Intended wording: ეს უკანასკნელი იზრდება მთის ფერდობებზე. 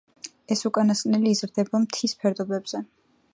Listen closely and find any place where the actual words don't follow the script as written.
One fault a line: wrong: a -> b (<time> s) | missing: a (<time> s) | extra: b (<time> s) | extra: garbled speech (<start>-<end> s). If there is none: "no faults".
no faults